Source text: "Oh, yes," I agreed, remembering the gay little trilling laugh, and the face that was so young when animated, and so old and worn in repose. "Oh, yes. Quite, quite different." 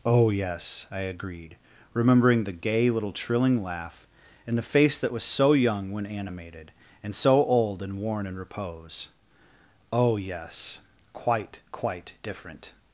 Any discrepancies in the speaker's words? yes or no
no